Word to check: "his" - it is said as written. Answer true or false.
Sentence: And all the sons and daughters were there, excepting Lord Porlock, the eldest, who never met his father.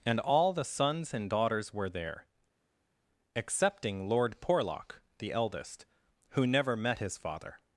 true